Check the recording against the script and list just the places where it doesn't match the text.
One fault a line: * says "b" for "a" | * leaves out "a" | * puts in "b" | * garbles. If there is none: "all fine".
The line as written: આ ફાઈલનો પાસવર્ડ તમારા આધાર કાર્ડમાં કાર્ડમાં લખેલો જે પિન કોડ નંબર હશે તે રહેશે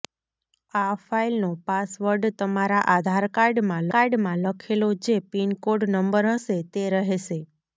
all fine